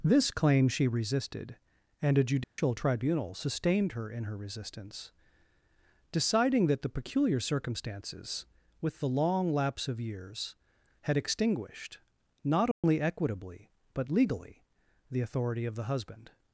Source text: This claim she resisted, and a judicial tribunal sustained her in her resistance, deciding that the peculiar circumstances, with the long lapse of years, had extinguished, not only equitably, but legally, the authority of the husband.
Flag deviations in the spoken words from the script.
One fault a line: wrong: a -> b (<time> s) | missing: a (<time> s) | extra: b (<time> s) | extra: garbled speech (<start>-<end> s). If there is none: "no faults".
no faults